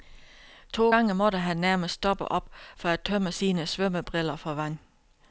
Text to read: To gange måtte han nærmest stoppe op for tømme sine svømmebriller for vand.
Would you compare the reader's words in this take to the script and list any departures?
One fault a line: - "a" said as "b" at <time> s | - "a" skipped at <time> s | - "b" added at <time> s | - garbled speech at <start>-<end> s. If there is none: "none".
- "at" added at 2.9 s